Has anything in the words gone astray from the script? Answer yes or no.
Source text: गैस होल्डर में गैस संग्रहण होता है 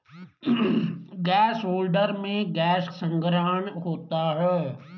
no